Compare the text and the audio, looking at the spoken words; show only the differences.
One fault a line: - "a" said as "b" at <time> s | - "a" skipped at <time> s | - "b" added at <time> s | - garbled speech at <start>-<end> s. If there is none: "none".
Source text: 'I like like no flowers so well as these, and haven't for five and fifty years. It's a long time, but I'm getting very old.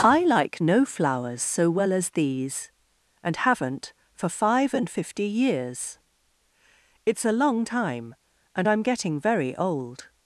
- "like" skipped at 0.6 s
- "but" said as "and" at 8.5 s